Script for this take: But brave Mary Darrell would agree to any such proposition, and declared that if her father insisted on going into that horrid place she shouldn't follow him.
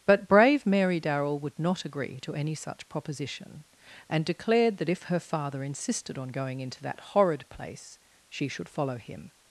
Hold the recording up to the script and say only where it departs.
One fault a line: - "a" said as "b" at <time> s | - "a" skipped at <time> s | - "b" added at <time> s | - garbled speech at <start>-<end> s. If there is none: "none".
- "not" added at 1.6 s
- "shouldn't" said as "should" at 8.5 s